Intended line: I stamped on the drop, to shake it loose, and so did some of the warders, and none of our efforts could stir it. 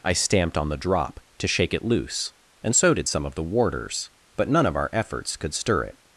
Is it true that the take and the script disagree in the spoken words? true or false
true